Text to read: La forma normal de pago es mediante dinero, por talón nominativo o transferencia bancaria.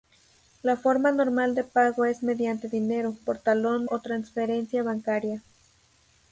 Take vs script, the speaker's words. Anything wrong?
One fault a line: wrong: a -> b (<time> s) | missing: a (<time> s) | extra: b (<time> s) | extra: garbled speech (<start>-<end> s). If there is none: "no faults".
missing: nominativo (3.9 s)